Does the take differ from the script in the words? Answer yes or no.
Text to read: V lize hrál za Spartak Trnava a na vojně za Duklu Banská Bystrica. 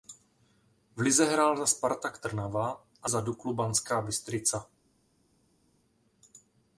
yes